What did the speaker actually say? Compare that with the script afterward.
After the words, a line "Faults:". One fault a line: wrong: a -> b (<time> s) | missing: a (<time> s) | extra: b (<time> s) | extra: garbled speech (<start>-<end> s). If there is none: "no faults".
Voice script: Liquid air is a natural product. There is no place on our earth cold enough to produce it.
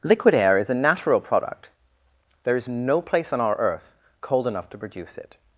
Liquid air is a natural product. There is no place on our earth cold enough to produce it.
Faults:
no faults